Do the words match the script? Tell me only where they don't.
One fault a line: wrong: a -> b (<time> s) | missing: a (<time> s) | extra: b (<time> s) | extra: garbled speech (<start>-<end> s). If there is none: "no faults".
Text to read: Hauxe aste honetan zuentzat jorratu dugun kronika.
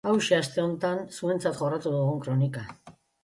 no faults